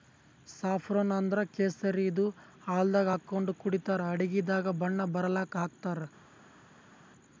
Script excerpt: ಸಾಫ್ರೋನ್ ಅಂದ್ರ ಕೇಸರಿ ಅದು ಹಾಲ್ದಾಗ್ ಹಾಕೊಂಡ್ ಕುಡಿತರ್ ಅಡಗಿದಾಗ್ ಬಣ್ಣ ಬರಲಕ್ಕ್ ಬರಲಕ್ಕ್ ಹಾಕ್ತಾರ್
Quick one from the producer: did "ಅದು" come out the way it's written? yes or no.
no